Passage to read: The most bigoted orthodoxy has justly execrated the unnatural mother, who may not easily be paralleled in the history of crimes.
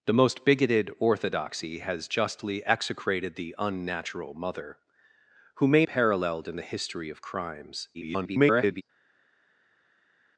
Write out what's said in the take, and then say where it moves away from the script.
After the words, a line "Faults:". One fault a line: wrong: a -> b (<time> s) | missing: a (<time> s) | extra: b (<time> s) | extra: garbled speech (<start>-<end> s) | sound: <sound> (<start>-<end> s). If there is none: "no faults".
The most bigoted orthodoxy has justly execrated the unnatural mother, who may paralleled in the history of crimes. [garbled]
Faults:
missing: not easily be (5.8 s)
extra: garbled speech (7.9-8.8 s)